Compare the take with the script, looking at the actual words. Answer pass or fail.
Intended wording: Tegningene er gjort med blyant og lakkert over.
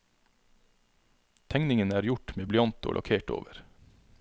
pass